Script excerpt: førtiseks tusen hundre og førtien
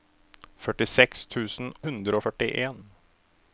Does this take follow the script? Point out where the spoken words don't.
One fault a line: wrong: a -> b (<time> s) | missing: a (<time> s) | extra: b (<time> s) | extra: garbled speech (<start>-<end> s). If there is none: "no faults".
no faults